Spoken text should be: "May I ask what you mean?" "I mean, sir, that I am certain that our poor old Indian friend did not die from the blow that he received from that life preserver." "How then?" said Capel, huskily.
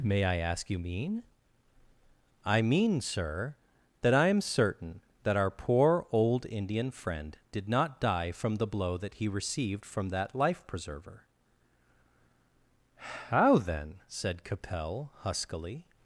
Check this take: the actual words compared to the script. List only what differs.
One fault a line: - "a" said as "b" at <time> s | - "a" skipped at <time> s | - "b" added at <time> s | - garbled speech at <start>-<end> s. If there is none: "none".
- "what" skipped at 0.7 s